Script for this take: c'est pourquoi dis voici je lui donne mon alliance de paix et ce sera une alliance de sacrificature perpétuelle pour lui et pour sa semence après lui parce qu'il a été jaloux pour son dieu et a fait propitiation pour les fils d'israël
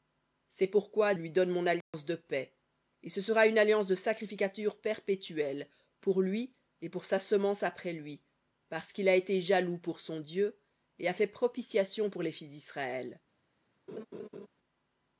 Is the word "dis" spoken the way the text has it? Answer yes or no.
no